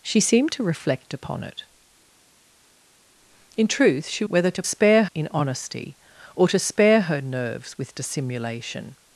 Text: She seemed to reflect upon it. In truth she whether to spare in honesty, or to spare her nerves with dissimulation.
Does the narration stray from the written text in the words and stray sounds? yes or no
no